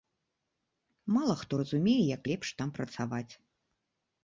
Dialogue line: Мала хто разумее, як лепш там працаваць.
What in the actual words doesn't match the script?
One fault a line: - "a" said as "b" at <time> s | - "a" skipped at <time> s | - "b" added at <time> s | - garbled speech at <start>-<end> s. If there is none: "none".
none